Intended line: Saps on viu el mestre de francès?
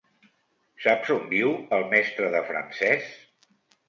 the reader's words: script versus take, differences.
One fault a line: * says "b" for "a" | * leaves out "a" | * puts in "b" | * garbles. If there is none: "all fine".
all fine